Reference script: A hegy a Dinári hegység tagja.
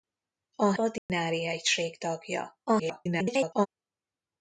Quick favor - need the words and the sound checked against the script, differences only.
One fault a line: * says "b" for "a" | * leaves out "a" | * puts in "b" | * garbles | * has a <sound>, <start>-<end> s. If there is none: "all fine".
* leaves out "hegy"
* has a dropout, 1.0-1.1 s
* garbles